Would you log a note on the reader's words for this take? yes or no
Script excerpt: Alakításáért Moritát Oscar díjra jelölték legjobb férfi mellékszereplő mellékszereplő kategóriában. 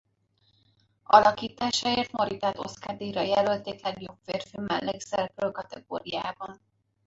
yes